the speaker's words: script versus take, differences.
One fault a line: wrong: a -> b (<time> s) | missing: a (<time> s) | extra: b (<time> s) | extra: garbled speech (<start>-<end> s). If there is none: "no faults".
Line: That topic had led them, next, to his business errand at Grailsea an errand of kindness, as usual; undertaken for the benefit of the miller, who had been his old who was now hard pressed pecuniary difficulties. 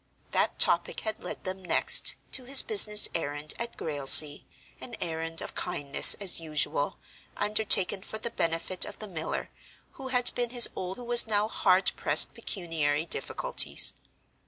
no faults